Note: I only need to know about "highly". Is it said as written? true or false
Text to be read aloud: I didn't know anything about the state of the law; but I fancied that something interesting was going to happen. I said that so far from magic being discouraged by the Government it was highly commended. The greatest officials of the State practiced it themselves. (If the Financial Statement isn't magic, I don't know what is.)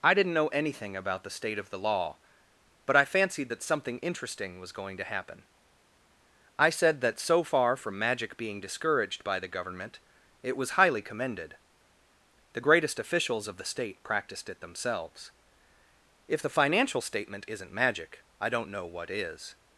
true